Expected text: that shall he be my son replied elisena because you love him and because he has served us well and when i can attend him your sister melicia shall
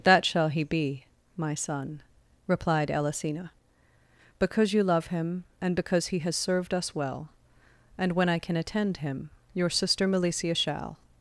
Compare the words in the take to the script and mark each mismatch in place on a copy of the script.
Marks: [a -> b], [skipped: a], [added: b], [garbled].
that shall he be my son replied elisena because you love him and because he has served us well and when i can attend him your sister melicia shall